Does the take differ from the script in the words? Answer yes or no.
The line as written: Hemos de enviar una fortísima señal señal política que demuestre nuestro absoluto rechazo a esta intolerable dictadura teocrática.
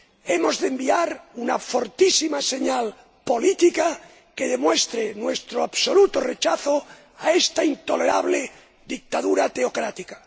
yes